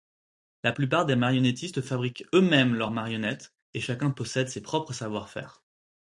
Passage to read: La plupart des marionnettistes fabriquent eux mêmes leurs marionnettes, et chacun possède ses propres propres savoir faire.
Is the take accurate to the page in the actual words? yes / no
no